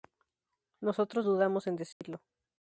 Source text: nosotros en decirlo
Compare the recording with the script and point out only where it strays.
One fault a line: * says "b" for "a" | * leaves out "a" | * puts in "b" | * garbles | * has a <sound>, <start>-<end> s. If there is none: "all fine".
* puts in "dudamos"
* has a dropout, 1.9-2.0 s